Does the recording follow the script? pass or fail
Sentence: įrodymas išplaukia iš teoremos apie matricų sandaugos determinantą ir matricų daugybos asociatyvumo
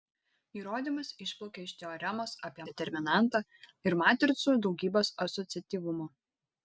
fail